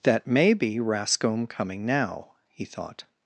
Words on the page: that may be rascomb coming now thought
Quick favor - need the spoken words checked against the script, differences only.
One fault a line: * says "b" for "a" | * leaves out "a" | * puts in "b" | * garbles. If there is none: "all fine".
* puts in "he"